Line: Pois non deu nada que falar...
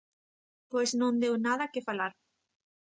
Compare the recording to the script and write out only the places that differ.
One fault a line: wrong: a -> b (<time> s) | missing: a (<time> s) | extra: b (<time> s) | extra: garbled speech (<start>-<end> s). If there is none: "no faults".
no faults